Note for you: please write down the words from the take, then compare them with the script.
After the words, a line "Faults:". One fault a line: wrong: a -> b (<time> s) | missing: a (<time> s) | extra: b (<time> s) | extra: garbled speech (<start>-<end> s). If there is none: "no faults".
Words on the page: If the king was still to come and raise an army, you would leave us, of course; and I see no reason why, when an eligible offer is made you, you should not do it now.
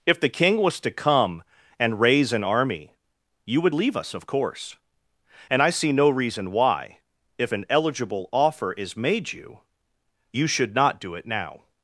If the king was to come and raise an army, you would leave us, of course; and I see no reason why, if an eligible offer is made you, you should not do it now.
Faults:
missing: still (0.8 s)
wrong: when -> if (7.4 s)